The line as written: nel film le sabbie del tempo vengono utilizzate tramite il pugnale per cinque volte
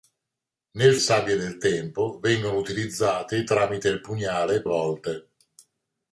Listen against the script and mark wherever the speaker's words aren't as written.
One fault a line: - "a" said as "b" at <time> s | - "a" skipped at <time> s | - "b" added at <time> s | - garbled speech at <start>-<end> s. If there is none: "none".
- "film le" skipped at 0.9 s
- "per cinque" skipped at 4.6 s